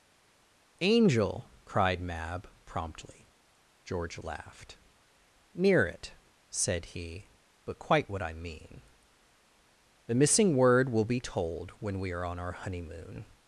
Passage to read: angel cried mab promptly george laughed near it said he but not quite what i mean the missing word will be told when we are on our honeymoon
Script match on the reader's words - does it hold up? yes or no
no